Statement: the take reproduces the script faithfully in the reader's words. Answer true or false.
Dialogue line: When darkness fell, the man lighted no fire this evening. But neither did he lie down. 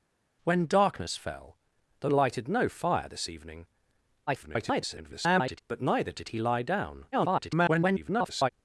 false